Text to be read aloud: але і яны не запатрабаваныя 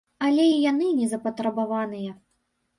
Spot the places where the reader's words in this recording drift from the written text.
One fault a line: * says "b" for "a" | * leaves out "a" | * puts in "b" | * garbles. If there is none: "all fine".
all fine